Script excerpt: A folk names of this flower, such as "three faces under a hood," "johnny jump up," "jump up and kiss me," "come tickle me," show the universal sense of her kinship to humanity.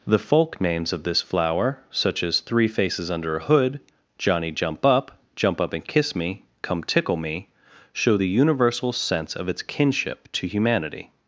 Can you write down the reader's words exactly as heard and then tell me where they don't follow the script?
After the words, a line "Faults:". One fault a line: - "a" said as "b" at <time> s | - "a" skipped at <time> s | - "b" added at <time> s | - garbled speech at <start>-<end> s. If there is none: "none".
The folk names of this flower, such as "three faces under a hood," "johnny jump up," "jump up and kiss me," "come tickle me," show the universal sense of its kinship to humanity.
Faults:
- "A" said as "The" at 0.1 s
- "her" said as "its" at 9.5 s